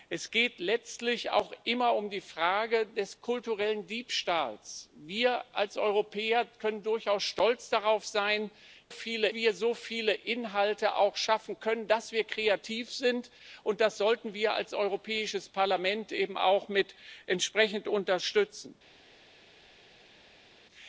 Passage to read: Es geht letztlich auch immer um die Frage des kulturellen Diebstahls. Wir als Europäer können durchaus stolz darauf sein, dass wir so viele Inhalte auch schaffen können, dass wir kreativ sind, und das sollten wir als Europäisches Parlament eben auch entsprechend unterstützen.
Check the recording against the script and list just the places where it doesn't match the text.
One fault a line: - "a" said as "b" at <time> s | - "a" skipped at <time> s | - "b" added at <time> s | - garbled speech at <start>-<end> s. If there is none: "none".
- "dass" said as "viele" at 8.9 s